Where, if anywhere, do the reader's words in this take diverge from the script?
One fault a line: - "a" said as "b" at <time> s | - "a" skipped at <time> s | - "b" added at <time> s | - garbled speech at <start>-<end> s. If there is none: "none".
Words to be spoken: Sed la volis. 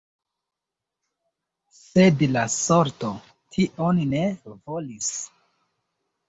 - "sorto tion ne" added at 2.6 s